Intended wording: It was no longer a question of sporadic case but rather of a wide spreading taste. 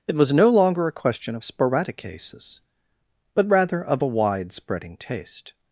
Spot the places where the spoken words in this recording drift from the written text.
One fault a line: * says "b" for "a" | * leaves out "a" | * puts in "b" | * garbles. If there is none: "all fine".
* says "cases" for "case"